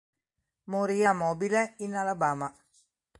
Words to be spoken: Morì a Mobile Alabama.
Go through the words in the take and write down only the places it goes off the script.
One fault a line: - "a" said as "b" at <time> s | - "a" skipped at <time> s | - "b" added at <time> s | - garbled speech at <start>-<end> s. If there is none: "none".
- "in" added at 1.8 s